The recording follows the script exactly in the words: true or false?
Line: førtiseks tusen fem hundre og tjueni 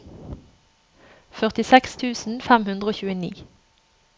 true